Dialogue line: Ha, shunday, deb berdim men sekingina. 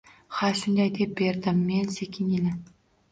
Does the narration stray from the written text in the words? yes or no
no